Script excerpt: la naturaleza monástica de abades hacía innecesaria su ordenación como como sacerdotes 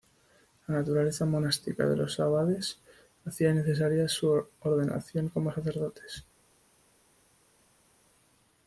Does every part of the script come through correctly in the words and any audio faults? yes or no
no